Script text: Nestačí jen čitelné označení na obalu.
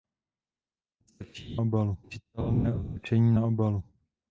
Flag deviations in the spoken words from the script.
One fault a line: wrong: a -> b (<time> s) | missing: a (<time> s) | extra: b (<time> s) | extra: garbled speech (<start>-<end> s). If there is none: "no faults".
wrong: jen -> obalu (1.6 s)